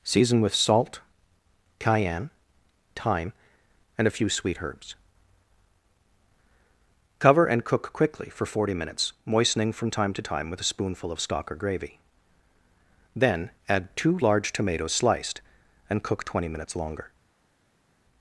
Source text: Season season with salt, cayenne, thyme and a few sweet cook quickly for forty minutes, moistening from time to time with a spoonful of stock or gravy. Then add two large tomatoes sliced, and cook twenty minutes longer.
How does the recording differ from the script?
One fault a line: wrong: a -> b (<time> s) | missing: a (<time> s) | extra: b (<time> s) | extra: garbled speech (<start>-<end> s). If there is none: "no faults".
missing: season (0.4 s)
extra: herbs Cover and (4.6 s)